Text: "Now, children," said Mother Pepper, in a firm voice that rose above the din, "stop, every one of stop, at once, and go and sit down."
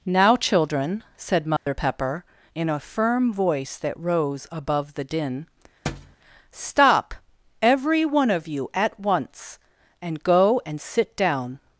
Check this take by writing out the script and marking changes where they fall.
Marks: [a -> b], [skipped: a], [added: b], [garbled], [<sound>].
"Now, children," said Mother [dropout] Pepper, in a firm voice that rose above the din, [thud] "stop, every one of [stop, -> you] at once, and go and sit down."